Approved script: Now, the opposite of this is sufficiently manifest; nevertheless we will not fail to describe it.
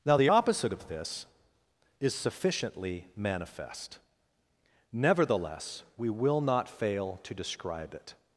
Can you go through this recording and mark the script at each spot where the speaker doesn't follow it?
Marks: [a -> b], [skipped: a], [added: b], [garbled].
Now, the opposite of this is sufficiently manifest; nevertheless we will not fail to describe it.